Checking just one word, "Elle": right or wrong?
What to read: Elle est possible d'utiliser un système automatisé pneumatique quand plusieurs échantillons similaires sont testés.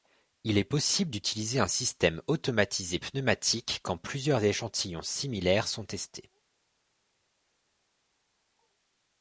wrong